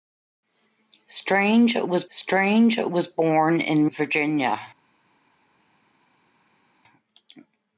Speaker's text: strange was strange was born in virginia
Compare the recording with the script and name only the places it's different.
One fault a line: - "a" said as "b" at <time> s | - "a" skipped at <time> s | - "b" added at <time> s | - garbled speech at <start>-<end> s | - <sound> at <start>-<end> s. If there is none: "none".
none